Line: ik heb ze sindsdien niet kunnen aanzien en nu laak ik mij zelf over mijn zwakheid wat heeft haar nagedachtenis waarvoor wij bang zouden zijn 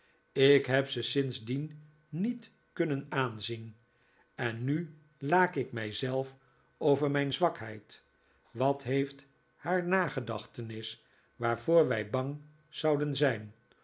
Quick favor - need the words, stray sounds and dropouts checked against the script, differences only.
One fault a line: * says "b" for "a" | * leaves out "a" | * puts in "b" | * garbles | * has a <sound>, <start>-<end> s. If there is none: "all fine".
all fine